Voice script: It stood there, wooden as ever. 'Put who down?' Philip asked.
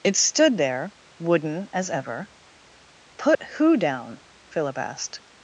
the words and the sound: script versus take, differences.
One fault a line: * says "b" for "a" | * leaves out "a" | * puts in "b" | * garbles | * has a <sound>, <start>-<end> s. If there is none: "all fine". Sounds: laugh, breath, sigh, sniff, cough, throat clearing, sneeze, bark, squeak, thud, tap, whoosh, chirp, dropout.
* has a dropout, 3.4-3.4 s